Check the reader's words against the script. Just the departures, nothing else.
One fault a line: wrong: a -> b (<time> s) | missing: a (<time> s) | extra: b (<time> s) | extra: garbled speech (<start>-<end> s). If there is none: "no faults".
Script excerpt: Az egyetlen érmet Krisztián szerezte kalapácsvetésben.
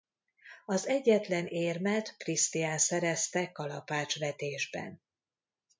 no faults